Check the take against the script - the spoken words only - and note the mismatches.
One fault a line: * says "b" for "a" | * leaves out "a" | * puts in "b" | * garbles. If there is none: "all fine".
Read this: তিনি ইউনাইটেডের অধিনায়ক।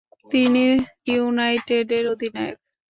all fine